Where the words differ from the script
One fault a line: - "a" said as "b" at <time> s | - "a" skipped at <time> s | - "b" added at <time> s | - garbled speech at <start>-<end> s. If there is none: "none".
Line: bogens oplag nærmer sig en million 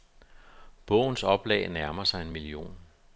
none